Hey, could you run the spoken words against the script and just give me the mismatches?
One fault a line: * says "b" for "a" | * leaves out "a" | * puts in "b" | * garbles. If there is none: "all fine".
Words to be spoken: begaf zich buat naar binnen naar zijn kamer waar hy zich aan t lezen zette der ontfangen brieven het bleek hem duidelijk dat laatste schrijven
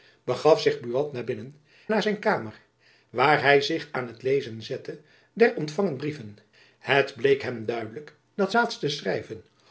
all fine